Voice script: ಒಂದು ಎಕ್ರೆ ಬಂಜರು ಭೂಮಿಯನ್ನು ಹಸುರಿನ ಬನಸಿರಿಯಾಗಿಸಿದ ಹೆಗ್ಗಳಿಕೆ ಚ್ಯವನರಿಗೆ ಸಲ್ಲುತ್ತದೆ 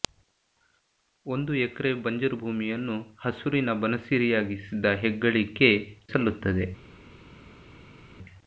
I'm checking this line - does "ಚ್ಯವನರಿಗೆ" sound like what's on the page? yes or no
no